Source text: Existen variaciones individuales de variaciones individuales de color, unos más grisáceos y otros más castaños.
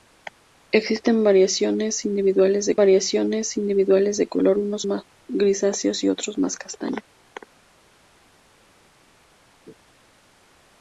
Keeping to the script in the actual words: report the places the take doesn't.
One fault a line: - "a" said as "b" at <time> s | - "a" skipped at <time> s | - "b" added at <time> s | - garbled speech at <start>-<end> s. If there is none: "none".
none